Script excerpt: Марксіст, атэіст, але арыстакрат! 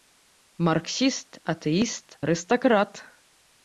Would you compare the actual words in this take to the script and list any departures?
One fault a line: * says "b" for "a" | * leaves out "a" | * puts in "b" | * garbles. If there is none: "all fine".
* leaves out "але"